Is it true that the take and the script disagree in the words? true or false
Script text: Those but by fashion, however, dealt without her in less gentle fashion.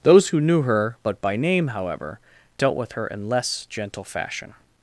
true